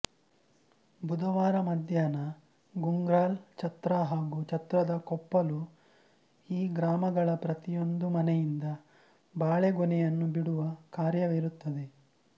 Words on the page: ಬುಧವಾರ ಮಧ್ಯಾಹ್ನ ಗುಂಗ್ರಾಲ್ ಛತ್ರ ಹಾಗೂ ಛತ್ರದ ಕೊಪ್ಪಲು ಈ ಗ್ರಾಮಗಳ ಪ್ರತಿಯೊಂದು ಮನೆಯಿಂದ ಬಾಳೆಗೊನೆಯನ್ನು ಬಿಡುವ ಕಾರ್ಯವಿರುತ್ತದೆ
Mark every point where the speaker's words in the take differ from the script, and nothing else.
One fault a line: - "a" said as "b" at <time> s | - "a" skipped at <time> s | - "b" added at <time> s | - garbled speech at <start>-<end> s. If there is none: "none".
none